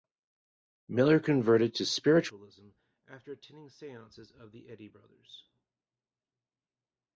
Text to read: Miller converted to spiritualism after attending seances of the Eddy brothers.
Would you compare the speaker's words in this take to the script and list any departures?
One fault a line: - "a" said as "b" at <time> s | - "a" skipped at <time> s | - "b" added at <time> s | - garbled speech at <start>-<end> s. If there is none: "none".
none